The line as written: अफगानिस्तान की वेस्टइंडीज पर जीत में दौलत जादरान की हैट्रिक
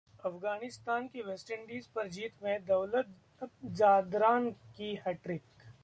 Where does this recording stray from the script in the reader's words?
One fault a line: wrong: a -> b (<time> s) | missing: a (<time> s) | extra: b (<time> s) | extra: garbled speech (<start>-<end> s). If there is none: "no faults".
no faults